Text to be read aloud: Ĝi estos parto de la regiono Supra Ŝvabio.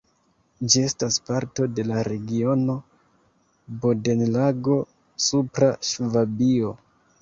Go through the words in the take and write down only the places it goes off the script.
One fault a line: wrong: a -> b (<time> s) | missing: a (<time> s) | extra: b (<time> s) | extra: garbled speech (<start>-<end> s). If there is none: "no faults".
wrong: estos -> estas (0.9 s)
extra: Bodenlago (3.9 s)